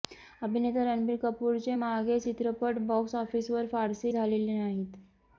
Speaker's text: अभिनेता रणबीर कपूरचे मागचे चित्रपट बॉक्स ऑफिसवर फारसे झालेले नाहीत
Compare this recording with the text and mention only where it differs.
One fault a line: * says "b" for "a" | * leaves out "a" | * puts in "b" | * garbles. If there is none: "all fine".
all fine